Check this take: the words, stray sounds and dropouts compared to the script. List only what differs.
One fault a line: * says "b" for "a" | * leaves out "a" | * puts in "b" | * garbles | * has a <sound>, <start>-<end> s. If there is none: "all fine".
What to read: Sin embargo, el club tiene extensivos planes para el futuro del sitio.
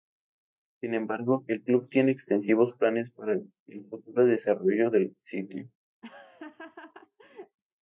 * puts in "desarrollo"
* has a laugh, 6.0-7.6 s